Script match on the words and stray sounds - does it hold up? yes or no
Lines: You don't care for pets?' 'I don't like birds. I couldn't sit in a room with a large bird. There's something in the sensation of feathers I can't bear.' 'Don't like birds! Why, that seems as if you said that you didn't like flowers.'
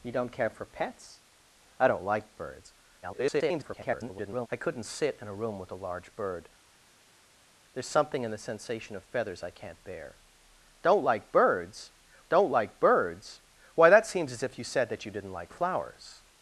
no